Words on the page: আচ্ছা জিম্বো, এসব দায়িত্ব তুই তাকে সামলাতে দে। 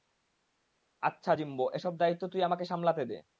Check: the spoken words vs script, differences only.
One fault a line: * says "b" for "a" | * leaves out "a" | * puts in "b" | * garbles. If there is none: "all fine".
* says "আমাকে" for "তাকে"